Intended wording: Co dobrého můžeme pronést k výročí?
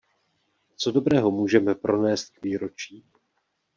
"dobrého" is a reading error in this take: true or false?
false